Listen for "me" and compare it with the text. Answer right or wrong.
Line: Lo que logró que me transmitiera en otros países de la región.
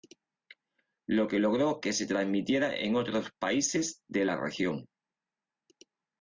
wrong